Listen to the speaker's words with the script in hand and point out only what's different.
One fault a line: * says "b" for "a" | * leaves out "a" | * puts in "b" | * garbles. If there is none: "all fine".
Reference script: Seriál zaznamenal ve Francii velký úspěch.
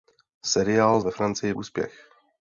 * leaves out "zaznamenal"
* leaves out "velký"